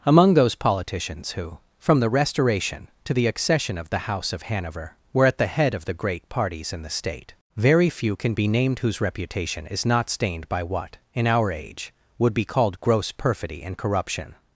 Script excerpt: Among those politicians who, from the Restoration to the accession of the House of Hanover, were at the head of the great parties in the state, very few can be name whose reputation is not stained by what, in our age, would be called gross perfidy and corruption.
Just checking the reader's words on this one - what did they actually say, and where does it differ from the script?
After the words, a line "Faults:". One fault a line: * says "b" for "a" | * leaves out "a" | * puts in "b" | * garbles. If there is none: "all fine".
Among those politicians who, from the Restoration to the accession of the House of Hanover, were at the head of the great parties in the state, very few can be named whose reputation is not stained by what, in our age, would be called gross perfidy and corruption.
Faults:
* says "named" for "name"